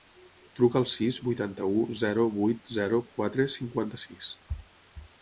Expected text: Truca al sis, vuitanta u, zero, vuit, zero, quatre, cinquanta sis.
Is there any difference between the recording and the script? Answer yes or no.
no